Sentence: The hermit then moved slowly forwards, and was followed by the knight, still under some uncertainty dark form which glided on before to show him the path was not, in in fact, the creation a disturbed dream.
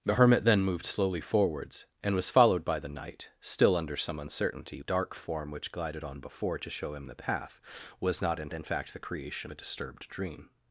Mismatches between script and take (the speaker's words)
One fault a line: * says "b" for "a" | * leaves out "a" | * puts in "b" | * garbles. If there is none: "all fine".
all fine